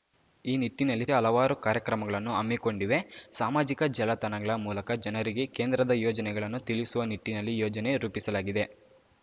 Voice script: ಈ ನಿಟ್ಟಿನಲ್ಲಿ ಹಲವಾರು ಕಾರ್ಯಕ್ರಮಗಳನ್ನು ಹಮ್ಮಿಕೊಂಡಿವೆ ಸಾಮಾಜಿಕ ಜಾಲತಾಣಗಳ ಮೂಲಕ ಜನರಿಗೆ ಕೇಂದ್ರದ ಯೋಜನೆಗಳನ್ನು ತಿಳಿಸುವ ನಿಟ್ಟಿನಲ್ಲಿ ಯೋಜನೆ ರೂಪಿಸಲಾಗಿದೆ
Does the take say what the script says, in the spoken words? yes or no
yes